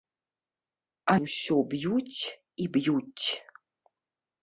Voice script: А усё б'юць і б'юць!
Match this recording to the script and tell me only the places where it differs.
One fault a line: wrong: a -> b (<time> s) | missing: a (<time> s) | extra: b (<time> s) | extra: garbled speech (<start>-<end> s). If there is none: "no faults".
no faults